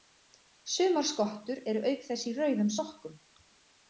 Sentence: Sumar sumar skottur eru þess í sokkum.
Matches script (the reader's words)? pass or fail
fail